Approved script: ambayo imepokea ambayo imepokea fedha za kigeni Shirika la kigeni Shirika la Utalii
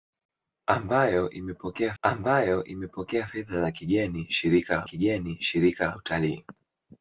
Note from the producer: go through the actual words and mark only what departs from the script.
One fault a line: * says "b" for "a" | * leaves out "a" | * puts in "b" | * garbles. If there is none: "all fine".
all fine